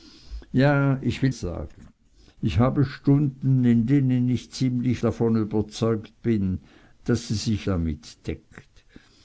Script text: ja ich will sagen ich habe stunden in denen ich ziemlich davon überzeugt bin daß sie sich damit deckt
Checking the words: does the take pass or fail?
pass